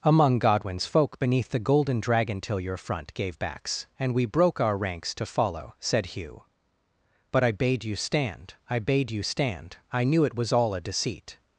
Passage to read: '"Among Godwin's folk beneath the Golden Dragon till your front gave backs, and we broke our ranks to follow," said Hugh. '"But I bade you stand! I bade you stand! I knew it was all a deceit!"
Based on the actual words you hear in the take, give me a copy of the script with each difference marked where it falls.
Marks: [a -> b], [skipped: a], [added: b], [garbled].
'"Among Godwin's folk beneath the Golden Dragon till your front gave backs, and we broke our ranks to follow," said Hugh. '"But I bade you stand! I bade you stand! I knew it was all a deceit!"